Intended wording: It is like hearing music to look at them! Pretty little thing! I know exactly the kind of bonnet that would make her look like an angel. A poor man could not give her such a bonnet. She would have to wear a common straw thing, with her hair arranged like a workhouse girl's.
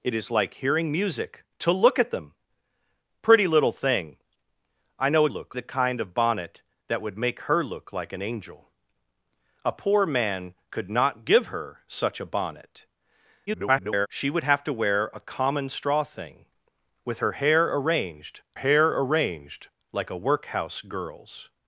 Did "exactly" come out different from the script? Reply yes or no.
yes